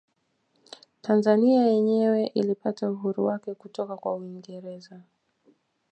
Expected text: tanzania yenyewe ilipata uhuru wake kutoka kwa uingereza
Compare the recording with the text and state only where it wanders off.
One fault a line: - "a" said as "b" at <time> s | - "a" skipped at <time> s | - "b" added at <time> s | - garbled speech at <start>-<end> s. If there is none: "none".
none